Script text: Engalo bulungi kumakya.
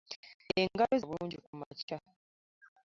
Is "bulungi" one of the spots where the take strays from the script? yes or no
no